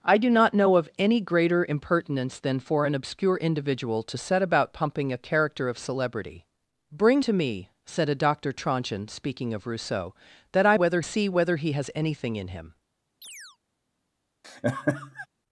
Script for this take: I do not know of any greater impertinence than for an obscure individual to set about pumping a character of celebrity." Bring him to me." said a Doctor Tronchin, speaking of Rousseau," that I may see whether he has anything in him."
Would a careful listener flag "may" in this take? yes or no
yes